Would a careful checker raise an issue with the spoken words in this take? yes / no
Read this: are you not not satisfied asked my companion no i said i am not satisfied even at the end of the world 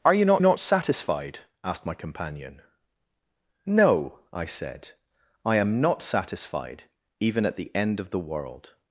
no